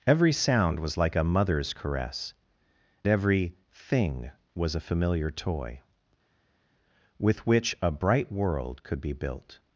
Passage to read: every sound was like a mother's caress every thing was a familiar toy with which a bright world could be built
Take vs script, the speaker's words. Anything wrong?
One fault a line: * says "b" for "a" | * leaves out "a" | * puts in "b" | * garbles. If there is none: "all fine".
all fine